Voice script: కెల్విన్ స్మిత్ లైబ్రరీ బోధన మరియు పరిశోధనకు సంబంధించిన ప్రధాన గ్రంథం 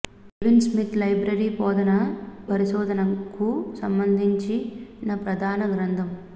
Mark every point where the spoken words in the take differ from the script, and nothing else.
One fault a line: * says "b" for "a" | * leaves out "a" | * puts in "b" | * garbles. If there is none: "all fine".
* leaves out "మరియు"